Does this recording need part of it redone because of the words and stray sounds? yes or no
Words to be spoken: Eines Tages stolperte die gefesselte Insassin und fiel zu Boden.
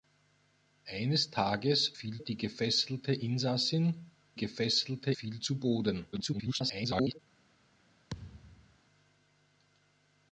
yes